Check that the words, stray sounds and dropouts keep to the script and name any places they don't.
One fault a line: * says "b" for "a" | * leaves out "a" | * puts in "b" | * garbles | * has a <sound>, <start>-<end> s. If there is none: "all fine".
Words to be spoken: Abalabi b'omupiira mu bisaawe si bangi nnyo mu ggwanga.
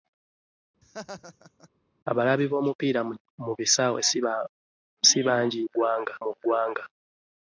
* has a laugh, 0.8-1.7 s
* says "ggwanga" for "nnyo"